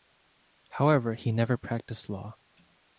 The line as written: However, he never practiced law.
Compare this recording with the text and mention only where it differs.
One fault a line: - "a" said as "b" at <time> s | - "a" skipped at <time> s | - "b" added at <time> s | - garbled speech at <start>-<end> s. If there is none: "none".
none